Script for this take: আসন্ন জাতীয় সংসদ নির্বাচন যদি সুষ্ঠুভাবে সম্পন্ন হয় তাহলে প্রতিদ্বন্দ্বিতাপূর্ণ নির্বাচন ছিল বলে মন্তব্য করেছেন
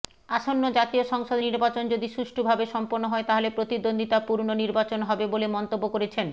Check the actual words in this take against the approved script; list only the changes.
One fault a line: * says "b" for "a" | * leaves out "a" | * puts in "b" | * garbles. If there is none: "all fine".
* says "হবে" for "ছিল"